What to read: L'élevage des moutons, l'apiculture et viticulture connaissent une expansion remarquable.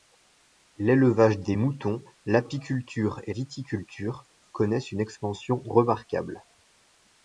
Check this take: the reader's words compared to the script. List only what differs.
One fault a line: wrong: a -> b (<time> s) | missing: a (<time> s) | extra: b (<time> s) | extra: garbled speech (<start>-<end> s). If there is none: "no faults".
no faults